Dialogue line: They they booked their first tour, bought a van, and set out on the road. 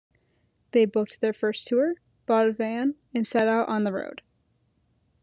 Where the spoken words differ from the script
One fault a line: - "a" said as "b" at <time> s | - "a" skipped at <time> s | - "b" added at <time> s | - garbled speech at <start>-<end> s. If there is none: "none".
- "they" skipped at 0.8 s